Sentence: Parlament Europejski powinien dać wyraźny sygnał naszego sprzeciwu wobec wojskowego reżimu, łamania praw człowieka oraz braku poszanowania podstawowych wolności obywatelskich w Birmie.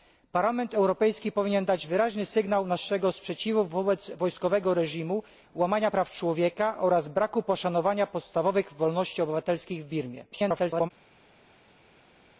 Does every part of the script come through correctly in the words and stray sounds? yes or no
no